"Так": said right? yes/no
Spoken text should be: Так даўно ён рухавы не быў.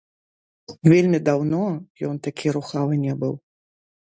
no